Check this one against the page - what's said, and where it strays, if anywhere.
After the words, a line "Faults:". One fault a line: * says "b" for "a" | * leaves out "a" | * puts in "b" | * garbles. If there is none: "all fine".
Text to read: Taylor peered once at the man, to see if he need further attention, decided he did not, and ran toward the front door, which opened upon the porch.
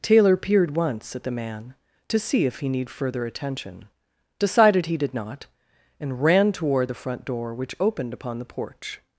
Taylor peered once at the man, to see if he need further attention, decided he did not, and ran toward the front door, which opened upon the porch.
Faults:
all fine